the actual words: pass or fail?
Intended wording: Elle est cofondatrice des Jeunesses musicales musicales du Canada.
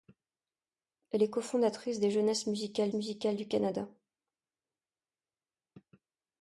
pass